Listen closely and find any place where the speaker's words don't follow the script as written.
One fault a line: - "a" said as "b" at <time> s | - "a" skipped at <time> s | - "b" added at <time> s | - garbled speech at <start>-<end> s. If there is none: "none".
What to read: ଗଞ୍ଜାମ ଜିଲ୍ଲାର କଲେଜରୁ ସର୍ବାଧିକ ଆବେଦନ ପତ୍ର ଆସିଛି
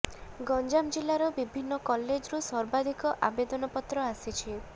- "ବିଭିନ୍ନ" added at 1.4 s